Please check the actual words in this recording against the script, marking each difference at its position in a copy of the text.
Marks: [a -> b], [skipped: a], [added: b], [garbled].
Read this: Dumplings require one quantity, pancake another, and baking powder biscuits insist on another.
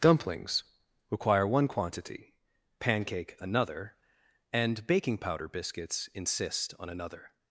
Dumplings require one quantity, pancake another, and baking powder biscuits insist on another.